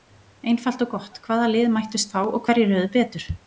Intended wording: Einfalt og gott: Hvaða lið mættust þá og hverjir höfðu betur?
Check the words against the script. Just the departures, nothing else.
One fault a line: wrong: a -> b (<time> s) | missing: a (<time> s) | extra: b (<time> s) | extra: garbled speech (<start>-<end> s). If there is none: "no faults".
no faults